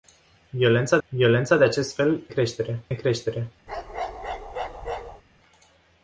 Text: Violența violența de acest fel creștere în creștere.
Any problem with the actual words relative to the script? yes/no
no